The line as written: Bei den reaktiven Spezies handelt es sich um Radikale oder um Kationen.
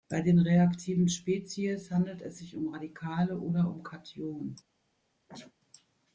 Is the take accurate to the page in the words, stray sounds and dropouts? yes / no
no